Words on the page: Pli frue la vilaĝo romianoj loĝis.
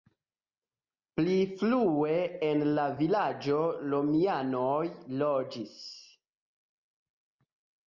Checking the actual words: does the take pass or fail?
fail